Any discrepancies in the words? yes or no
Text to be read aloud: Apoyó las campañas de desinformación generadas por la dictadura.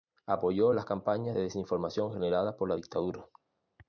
no